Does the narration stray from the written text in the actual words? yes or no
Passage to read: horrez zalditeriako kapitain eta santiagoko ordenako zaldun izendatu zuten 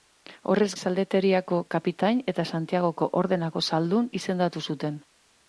no